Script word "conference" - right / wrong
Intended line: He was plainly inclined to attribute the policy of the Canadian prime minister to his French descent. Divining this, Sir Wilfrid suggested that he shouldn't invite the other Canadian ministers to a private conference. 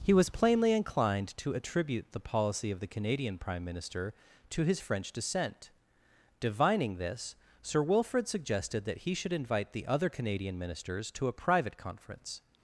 right